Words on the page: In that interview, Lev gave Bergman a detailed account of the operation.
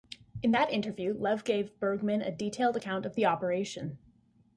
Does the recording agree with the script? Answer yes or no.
yes